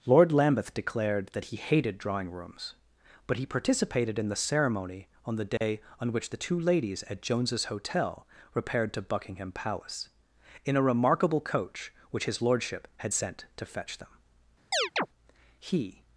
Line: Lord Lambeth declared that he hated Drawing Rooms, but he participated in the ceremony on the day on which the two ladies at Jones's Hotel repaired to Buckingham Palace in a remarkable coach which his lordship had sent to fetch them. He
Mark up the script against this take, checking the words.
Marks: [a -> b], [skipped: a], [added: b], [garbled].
Lord Lambeth declared that he hated Drawing Rooms, but he participated in the ceremony on the day on which the two ladies at Jones's Hotel repaired to Buckingham Palace in a remarkable coach which his lordship had sent to fetch them. He